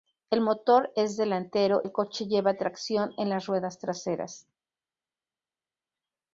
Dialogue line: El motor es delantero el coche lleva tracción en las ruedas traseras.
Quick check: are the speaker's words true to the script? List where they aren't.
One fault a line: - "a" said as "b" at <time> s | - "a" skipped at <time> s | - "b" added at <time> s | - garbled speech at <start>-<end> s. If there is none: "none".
none